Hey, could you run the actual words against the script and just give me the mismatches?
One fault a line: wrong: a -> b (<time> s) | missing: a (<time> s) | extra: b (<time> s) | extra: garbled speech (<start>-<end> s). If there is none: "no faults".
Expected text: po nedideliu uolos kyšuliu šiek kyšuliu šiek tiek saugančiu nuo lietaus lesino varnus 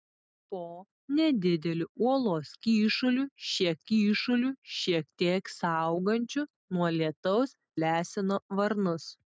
no faults